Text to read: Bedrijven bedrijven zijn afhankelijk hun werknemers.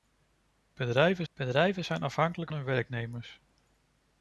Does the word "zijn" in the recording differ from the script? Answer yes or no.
no